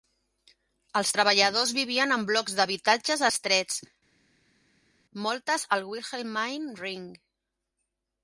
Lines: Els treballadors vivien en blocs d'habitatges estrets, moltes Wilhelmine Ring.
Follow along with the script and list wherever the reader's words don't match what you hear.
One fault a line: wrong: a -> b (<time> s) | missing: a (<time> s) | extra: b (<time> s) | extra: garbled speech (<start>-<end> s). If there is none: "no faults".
extra: al (5.8 s)